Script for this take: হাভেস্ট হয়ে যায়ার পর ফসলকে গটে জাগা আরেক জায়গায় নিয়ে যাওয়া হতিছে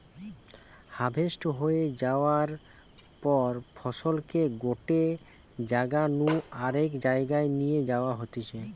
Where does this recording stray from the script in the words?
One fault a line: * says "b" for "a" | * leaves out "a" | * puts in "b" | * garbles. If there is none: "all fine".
* puts in "নু"